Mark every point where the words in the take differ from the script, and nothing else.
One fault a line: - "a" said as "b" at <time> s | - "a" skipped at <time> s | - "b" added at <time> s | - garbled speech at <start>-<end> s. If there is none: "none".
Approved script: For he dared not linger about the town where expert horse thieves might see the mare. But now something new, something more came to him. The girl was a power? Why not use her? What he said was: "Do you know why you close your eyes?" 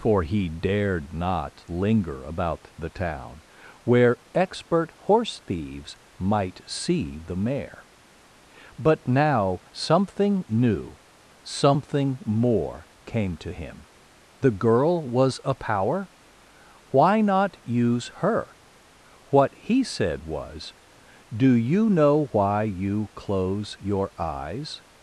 none